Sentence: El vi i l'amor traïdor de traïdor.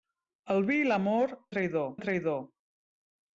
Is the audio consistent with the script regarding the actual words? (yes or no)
yes